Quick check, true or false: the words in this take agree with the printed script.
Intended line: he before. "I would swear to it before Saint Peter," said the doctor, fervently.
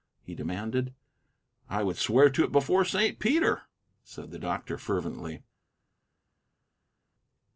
false